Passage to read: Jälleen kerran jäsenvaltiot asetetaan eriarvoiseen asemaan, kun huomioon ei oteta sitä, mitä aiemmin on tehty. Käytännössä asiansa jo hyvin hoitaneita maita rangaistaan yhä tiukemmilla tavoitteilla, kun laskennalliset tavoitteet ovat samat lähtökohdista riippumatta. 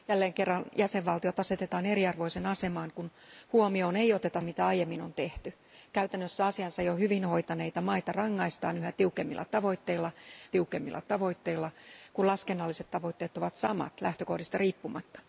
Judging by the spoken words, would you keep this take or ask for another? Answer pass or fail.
fail